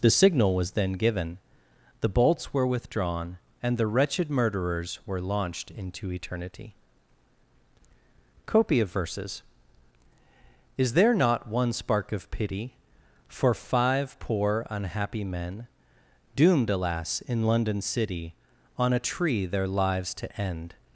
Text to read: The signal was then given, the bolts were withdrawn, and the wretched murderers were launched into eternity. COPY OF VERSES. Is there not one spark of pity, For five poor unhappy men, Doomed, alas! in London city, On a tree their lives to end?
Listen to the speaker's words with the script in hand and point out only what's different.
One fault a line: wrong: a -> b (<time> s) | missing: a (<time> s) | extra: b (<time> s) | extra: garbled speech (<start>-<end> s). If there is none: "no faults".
no faults